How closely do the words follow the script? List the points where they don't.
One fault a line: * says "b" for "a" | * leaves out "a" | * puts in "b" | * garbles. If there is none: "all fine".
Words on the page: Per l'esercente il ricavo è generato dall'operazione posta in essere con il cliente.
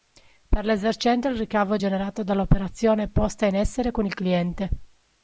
all fine